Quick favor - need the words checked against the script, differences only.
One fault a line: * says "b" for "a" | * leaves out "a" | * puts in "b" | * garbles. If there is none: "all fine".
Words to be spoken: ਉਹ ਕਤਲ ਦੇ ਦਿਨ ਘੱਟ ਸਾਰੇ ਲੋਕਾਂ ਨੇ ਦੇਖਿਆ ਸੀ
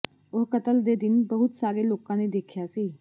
* says "ਬਹੁਤ" for "ਘੱਟ"